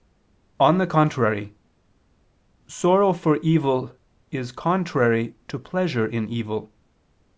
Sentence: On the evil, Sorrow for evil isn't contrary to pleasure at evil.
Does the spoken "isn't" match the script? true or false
false